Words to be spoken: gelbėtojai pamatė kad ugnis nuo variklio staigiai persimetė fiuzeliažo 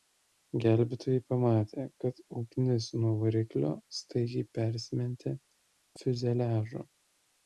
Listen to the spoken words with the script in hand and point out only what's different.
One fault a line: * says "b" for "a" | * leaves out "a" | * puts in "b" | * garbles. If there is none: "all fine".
all fine